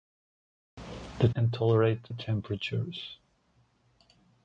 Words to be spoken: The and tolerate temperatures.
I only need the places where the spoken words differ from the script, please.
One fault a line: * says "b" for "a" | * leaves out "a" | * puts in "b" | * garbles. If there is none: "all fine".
all fine